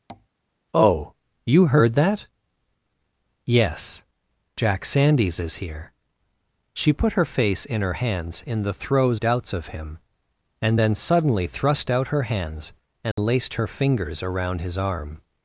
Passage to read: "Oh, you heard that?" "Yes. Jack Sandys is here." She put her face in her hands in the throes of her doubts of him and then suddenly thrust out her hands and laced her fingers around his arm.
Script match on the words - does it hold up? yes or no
no